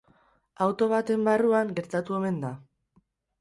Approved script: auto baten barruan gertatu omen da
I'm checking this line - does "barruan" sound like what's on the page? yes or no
yes